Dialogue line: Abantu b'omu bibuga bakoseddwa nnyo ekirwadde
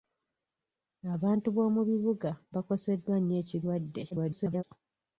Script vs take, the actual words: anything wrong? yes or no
yes